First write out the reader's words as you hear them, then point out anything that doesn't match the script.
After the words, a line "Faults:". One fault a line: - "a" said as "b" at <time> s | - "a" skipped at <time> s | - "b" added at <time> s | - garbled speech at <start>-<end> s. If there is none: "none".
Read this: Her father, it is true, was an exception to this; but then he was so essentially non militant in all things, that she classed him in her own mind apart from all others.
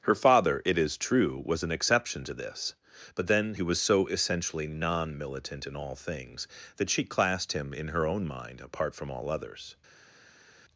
Her father, it is true, was an exception to this; but then he was so essentially non militant in all things, that she classed him in her own mind apart from all others.
Faults:
none